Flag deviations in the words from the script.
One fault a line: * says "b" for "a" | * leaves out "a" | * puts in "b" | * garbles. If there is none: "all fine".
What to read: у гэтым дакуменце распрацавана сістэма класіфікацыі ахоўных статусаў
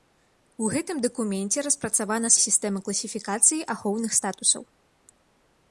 all fine